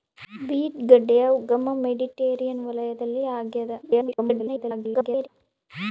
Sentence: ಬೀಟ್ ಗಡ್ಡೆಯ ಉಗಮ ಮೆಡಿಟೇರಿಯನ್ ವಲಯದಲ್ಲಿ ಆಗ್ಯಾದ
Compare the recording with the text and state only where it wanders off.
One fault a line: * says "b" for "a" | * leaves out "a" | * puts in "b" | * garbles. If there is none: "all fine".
* garbles